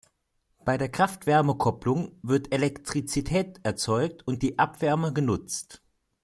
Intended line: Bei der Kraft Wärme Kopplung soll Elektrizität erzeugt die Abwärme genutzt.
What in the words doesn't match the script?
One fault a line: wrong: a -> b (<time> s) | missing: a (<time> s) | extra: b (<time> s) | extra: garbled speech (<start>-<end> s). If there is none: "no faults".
wrong: soll -> wird (2.2 s)
extra: und (4.3 s)